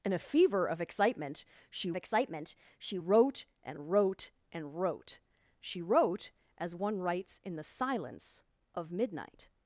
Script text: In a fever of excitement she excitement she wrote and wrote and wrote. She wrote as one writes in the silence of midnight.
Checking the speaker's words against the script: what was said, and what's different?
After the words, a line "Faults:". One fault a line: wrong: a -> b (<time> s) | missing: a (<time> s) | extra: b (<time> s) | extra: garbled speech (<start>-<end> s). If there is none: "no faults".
In a fever of excitement she excitement she wrote and wrote and wrote. She wrote as one writes in the silence of midnight.
Faults:
no faults